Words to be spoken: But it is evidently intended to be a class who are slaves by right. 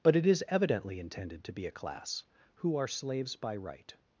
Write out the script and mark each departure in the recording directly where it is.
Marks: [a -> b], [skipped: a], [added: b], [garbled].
But it is evidently intended to be a class who are slaves by right.